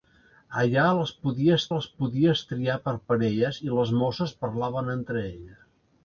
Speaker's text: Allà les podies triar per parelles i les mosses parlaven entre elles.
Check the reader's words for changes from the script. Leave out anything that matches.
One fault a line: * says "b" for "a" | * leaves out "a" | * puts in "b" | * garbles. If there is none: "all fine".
* puts in "les podies"